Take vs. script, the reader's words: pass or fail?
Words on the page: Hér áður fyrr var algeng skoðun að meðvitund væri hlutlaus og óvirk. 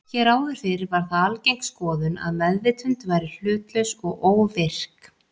fail